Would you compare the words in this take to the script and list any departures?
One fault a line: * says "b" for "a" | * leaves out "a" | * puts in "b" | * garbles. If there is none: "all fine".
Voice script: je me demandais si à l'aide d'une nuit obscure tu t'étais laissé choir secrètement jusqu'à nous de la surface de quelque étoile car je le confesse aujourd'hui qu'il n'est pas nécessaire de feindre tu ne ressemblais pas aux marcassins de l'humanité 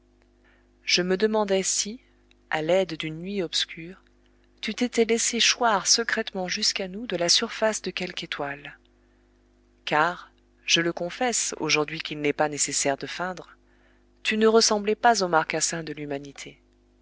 all fine